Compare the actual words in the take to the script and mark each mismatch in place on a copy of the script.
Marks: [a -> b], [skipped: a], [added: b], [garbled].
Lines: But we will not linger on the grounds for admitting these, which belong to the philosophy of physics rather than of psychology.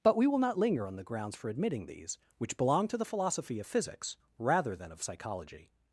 But we will not linger on the grounds for admitting these, which belong to the philosophy of physics rather than of psychology.